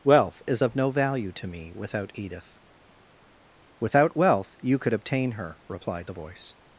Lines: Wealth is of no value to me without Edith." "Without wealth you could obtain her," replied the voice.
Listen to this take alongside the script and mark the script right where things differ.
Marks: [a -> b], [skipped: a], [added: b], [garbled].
Wealth is of no value to me without Edith." "Without wealth you could obtain her," replied the voice.